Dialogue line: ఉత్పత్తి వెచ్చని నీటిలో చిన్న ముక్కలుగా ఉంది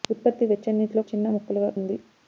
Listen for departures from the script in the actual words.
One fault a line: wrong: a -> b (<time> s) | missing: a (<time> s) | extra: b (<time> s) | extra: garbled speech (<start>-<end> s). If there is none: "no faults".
no faults